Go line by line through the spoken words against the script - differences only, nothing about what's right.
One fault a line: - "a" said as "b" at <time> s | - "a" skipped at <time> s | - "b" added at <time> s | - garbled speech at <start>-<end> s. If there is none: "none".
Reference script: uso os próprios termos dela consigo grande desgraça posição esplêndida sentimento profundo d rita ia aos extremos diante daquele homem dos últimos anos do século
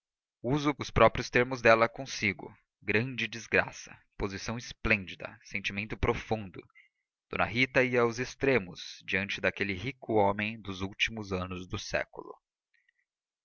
- "rico" added at 9.8 s